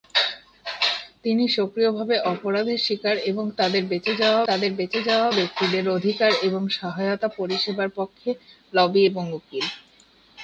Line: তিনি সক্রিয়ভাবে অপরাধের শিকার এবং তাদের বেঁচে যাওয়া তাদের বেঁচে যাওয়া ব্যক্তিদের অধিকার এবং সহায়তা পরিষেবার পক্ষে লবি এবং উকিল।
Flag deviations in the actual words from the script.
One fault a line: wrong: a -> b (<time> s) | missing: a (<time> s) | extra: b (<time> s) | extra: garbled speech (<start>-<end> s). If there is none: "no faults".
no faults